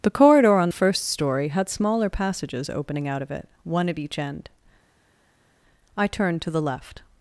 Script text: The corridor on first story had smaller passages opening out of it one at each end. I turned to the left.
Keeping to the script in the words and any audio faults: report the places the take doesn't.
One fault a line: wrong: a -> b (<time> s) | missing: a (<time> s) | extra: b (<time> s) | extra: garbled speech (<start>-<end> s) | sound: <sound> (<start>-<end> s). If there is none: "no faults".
no faults